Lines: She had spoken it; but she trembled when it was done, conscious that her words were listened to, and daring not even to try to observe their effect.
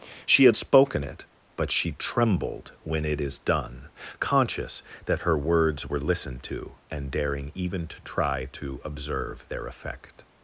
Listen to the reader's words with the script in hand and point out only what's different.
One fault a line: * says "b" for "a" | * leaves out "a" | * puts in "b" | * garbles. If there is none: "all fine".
* says "is" for "was"
* leaves out "not"